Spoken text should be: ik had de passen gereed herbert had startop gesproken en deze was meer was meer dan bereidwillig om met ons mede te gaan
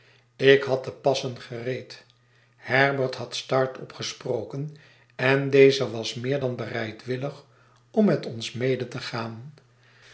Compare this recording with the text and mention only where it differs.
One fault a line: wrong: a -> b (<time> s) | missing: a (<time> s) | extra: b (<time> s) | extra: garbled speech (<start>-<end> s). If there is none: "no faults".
missing: was meer (6.4 s)